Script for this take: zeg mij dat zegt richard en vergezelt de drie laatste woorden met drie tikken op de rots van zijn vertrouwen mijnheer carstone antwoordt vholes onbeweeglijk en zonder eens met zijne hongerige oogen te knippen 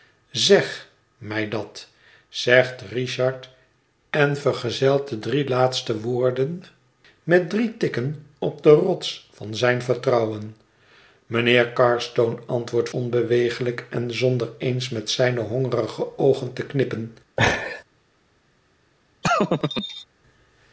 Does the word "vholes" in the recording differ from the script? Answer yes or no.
yes